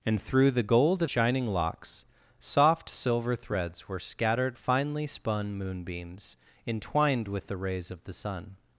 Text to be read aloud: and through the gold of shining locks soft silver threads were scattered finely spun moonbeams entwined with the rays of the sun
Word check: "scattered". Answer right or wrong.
right